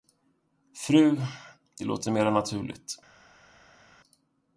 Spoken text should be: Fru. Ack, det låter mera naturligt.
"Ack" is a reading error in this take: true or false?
true